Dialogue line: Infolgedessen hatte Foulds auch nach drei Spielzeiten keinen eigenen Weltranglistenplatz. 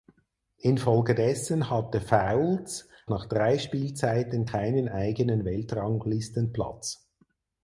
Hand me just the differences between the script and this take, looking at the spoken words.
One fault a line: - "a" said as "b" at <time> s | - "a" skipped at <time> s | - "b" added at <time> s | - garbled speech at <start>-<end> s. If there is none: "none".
- "auch" skipped at 2.9 s